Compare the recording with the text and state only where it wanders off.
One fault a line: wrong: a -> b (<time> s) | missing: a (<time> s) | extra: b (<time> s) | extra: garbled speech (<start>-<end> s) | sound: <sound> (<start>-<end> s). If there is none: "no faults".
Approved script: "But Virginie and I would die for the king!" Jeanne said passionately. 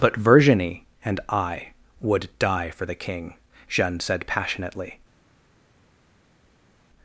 no faults